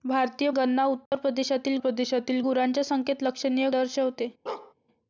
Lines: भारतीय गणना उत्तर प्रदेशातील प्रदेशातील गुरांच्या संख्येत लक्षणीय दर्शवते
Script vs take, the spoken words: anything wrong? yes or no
no